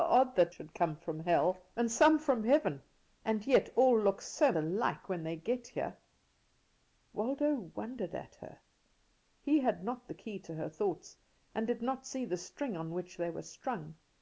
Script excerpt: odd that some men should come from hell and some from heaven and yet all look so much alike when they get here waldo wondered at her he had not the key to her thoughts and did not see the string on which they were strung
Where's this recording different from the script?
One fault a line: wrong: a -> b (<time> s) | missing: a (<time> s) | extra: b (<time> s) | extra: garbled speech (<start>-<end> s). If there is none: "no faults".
missing: some men (0.6 s)
missing: much (4.5 s)